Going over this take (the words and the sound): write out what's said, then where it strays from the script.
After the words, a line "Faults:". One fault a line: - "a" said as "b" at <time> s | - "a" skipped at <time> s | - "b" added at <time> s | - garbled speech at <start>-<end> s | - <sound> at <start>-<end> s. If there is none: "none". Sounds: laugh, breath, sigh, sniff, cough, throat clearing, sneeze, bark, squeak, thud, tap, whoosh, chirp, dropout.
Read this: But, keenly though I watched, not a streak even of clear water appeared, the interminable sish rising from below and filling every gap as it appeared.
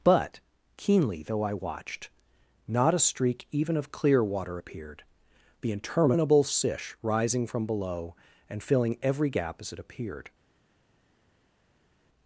But, keenly though I watched, not a streak even of clear water appeared, the interminable sish rising from below and filling every gap as it appeared.
Faults:
none